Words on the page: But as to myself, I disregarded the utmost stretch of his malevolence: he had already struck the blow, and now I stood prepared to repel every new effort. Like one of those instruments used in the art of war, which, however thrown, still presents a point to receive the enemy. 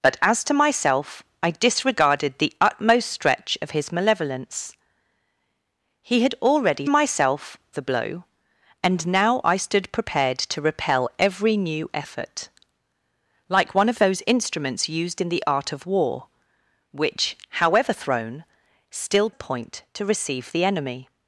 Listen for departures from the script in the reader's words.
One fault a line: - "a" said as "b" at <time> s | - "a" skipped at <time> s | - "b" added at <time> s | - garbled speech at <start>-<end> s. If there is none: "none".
- "struck" said as "myself" at 6.9 s
- "presents" skipped at 19.3 s